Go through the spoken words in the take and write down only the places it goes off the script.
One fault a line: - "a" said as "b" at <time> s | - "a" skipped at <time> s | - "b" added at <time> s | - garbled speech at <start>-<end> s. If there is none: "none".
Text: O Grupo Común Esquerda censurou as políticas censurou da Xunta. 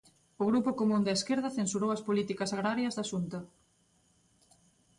- "da" added at 1.0 s
- "censurou" said as "agrarias" at 2.5 s